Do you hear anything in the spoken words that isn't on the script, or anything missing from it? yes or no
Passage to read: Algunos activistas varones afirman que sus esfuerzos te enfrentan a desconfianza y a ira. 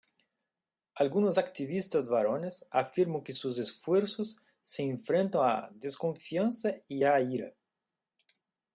yes